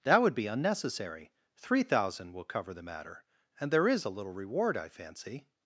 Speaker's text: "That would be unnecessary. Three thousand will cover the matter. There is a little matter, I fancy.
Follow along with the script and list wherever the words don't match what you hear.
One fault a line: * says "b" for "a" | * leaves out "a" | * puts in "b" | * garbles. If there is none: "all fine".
* puts in "And"
* says "reward" for "matter"